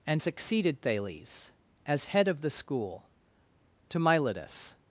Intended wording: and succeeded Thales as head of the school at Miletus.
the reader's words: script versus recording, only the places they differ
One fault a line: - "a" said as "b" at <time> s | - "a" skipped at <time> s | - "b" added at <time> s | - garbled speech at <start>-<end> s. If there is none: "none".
- "at" said as "to" at 3.9 s